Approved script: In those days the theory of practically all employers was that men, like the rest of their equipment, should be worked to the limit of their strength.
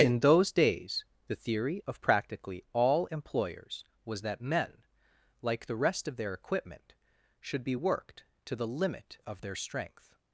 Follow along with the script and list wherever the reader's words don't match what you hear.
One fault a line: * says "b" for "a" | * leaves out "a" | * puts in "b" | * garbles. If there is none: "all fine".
all fine